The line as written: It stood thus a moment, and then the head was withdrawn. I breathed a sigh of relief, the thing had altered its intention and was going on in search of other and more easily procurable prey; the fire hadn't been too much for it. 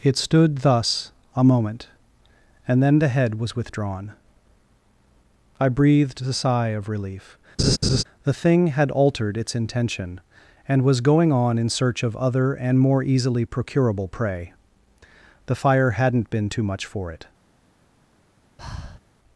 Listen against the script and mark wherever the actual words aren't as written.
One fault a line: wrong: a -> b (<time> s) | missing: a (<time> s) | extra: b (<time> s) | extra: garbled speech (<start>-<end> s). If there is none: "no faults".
no faults